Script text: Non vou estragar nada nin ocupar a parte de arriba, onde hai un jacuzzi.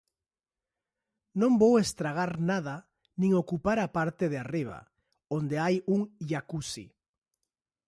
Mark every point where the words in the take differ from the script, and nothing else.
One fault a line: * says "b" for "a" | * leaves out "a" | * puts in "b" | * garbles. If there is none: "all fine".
all fine